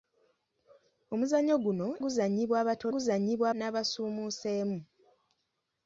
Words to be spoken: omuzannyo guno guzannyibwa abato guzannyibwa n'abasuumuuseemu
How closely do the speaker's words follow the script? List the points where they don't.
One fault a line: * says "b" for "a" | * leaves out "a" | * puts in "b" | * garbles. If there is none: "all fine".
all fine